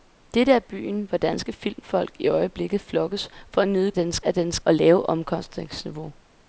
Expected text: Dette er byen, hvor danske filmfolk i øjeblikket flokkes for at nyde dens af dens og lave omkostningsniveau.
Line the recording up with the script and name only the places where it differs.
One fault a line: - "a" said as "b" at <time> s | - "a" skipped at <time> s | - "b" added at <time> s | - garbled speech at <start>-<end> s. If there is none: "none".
none